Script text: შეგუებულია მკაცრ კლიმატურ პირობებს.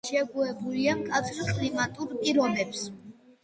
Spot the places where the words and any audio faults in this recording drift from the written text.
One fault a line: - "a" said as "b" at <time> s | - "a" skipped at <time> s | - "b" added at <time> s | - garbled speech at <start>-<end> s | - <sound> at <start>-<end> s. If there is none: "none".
none